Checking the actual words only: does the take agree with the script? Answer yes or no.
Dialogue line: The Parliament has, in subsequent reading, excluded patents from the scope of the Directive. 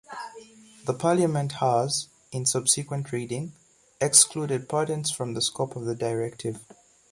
yes